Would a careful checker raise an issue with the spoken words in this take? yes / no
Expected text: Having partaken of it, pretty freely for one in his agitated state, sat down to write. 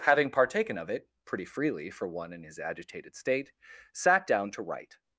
no